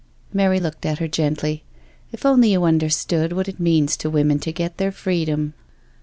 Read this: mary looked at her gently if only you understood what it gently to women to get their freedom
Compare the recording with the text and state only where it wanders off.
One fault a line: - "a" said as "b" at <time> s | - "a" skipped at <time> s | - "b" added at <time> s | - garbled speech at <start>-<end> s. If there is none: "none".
- "gently" said as "means" at 3.6 s